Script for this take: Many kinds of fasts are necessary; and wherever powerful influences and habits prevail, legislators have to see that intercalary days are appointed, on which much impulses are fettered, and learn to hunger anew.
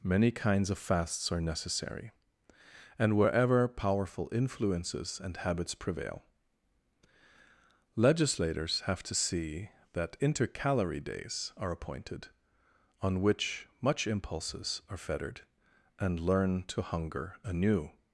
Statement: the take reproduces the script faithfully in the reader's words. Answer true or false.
true